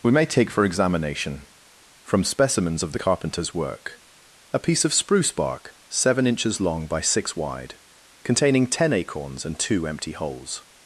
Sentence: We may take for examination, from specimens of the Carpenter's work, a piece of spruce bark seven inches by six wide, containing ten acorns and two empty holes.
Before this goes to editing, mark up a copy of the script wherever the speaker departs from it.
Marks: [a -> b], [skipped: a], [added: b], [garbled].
We may take for examination, from specimens of the Carpenter's work, a piece of spruce bark seven inches [added: long] by six wide, containing ten acorns and two empty holes.